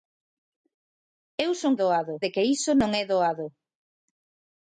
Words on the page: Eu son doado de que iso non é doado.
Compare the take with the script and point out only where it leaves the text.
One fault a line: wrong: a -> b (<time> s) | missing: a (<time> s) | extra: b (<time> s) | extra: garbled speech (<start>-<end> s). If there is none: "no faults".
no faults